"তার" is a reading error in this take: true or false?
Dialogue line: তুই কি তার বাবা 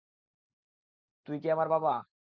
true